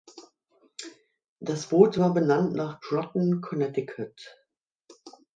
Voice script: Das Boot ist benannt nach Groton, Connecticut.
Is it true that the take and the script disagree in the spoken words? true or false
true